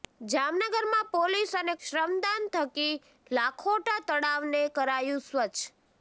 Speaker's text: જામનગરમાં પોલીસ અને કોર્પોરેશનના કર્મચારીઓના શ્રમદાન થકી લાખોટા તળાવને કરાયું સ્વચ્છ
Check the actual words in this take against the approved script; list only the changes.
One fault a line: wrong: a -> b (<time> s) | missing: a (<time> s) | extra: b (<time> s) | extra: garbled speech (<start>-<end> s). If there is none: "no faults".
missing: કોર્પોરેશનના કર્મચારીઓના (1.8 s)